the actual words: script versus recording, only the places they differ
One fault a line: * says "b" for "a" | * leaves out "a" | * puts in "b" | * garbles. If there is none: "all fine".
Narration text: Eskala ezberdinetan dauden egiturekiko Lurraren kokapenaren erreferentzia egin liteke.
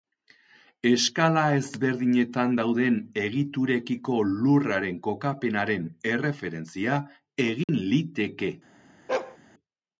all fine